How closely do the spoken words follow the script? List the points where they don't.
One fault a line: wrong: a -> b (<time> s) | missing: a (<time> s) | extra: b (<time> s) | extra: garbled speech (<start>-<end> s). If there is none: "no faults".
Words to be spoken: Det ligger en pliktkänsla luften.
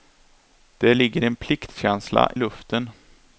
no faults